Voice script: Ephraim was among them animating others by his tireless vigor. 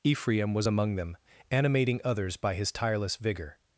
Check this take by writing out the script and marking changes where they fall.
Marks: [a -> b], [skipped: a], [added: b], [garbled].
Ephraim was among them animating others by his tireless vigor.